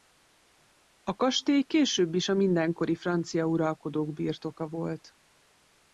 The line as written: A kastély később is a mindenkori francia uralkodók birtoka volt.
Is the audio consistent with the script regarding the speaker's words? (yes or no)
yes